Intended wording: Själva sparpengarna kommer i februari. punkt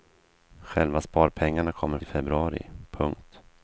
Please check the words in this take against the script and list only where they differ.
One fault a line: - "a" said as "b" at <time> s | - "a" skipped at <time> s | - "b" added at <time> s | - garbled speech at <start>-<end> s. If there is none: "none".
none